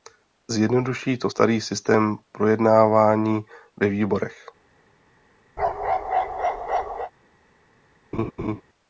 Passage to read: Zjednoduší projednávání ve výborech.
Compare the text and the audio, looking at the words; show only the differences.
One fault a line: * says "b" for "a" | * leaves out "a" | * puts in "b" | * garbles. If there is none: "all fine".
* puts in "to starý systém"